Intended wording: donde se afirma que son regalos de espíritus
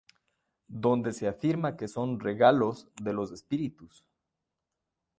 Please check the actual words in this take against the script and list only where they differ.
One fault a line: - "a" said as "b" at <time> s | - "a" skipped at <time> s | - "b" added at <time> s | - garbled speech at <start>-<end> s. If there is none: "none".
- "los" added at 3.1 s